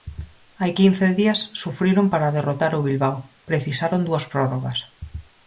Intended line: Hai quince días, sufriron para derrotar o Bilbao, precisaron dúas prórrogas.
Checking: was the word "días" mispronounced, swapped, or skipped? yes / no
no